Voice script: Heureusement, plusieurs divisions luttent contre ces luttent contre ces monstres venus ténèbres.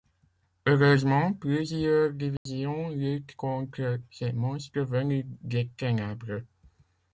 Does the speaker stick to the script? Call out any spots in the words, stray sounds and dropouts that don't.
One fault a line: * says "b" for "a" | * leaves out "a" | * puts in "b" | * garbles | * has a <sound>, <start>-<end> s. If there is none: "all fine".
* has a dropout, 2.4-2.5 s
* leaves out "luttent contre ces"
* puts in "des"